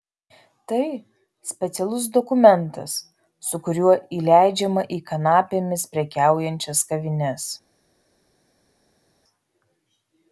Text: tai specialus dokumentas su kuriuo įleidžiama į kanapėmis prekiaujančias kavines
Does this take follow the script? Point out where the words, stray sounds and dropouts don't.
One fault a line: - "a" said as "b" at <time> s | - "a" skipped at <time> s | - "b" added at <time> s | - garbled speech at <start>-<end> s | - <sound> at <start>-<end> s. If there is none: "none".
none